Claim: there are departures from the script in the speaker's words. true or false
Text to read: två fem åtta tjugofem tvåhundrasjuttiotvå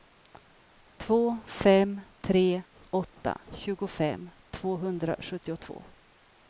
true